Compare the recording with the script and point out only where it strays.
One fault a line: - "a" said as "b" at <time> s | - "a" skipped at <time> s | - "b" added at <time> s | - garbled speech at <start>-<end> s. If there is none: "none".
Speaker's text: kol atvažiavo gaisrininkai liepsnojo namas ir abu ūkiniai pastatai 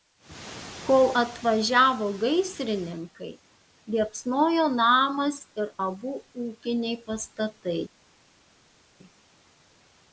none